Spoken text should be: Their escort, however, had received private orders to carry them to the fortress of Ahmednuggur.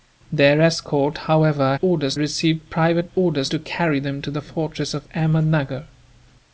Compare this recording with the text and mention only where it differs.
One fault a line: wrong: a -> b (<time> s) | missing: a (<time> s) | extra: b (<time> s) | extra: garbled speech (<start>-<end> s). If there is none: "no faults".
wrong: had -> orders (1.8 s)